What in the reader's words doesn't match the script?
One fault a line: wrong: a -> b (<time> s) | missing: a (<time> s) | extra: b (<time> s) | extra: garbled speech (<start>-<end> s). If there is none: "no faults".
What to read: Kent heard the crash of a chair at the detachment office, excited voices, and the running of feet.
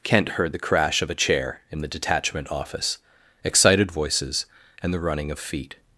wrong: at -> in (1.7 s)